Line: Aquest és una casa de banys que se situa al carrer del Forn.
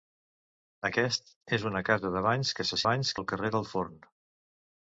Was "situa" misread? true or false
true